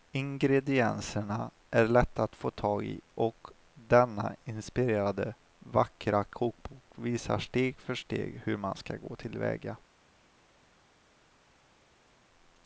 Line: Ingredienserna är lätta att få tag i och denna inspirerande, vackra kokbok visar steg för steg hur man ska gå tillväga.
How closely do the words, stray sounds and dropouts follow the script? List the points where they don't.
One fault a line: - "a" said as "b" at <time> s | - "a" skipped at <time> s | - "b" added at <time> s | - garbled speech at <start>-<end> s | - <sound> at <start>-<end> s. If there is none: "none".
none